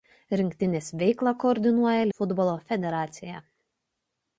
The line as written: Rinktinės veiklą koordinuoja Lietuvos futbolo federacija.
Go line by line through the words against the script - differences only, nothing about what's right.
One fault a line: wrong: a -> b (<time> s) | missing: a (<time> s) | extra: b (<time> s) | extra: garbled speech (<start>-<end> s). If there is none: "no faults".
missing: Lietuvos (2.1 s)